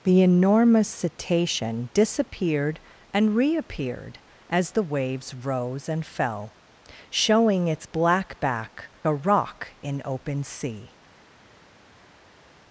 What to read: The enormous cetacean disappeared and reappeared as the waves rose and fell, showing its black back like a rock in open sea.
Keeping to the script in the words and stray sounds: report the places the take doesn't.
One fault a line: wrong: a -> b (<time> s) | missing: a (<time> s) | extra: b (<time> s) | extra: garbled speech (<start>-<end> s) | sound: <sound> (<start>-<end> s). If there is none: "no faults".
missing: like (8.9 s)